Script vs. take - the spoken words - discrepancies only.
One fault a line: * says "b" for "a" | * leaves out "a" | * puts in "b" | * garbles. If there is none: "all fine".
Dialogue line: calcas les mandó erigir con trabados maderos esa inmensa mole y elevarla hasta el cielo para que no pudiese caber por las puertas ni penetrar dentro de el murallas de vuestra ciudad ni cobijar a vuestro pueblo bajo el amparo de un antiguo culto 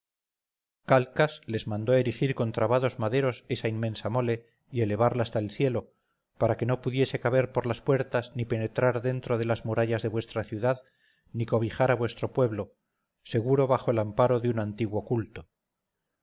* says "las" for "el"
* puts in "seguro"